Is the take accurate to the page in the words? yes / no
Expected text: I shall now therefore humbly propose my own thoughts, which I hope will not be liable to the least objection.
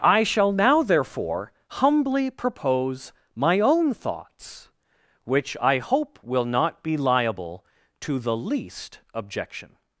yes